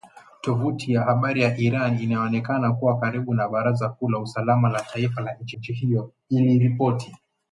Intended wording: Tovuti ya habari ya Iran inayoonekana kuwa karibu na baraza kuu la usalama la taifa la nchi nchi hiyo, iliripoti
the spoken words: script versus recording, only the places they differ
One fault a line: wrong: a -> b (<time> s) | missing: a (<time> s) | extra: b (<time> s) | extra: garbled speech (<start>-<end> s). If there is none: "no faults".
no faults